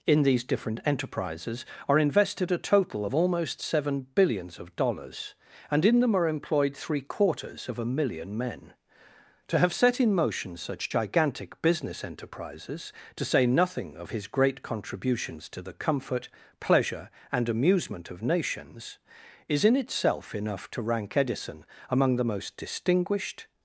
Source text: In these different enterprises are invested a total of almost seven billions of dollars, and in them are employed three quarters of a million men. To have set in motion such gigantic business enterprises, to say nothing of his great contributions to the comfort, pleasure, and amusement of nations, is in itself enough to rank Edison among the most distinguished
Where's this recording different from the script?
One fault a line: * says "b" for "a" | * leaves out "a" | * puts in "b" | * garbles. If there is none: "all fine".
all fine